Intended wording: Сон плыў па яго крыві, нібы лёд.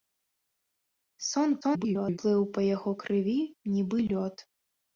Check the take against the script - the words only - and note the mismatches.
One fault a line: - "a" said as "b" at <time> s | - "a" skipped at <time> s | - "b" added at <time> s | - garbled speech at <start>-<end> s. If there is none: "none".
- garbled speech at 1.6-2.2 s